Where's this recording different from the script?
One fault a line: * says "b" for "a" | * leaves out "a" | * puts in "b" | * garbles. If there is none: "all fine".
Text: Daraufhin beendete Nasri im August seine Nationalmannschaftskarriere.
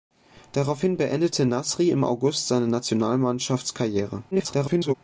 * garbles